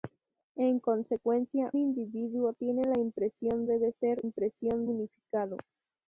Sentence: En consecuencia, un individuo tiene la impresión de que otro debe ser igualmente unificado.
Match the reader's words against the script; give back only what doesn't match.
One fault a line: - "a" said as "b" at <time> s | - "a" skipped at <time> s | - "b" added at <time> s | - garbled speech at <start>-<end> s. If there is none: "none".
- "un" skipped at 1.7 s
- "de que otro" skipped at 3.7 s
- "igualmente" said as "impresión" at 4.2 s